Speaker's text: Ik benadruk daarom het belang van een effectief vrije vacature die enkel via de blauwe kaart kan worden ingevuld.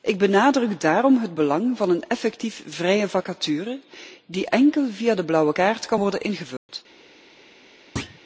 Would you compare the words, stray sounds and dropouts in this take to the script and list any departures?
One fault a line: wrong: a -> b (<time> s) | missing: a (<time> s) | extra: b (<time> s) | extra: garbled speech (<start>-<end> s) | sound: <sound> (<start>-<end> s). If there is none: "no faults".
sound: dropout (6.6-6.7 s)
sound: thud (8.0-8.2 s)